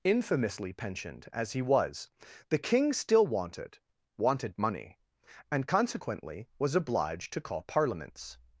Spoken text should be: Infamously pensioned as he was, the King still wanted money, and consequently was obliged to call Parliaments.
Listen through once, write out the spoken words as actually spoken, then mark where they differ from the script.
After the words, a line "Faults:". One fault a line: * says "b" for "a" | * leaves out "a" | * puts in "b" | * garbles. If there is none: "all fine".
Infamously pensioned as he was, the King still wanted wanted money, and consequently was obliged to call Parliaments.
Faults:
* puts in "wanted"